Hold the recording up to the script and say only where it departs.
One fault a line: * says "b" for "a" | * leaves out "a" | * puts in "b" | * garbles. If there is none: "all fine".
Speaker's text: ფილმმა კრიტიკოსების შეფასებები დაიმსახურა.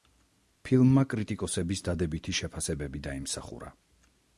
* puts in "დადებითი"